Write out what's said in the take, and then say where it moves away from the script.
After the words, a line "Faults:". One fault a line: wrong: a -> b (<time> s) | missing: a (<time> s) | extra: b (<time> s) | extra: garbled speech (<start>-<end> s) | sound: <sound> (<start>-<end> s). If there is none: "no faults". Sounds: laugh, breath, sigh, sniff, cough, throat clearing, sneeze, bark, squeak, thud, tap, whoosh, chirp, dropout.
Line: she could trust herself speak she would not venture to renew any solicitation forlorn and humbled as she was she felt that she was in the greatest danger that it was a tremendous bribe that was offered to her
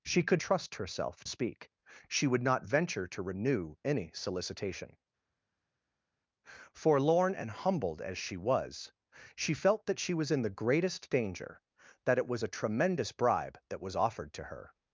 she could trust herself speak she would not venture to renew any solicitation forlorn and humbled as she was she felt that she was in the greatest danger that it was a tremendous bribe that was offered to her
Faults:
no faults